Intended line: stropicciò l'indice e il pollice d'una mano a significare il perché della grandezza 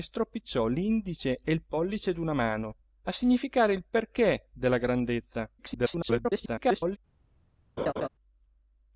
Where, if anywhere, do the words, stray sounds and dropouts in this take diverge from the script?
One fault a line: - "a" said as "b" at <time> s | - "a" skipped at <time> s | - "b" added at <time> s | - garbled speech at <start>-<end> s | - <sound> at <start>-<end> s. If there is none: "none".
- garbled speech at 5.6-7.0 s
- laugh at 7.8-8.1 s